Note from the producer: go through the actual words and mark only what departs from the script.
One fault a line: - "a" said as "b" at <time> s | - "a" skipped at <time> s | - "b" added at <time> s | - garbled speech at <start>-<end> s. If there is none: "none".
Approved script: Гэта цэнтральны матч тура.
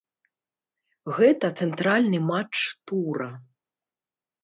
none